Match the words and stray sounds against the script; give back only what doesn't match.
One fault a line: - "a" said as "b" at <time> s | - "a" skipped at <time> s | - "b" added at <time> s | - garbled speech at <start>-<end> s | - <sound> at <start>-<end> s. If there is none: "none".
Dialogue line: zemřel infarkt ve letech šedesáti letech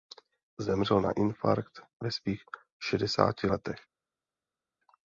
- "na" added at 1.0 s
- "letech" said as "svých" at 2.1 s